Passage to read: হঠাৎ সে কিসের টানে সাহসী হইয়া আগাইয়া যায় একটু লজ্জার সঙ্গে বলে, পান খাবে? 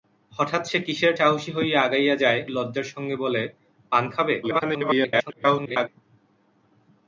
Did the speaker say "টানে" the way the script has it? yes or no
no